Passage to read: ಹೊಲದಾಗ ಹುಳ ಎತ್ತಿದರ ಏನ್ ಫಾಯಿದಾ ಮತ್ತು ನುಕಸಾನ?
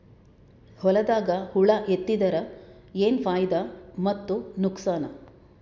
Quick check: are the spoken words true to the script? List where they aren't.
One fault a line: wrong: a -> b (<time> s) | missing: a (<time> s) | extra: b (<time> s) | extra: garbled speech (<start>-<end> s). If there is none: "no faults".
no faults